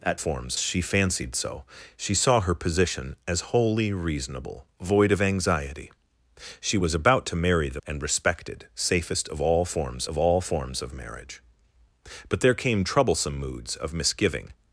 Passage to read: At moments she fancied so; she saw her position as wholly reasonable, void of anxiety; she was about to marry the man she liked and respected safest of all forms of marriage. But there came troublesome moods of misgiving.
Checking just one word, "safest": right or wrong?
wrong